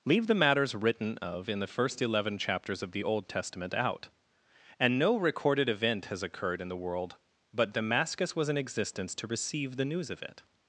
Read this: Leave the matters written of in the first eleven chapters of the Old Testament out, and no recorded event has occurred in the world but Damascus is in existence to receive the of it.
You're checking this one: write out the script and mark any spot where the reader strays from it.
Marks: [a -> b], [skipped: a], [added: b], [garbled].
Leave the matters written of in the first eleven chapters of the Old Testament out, and no recorded event has occurred in the world but Damascus [is -> was] in existence to receive the [added: news] of it.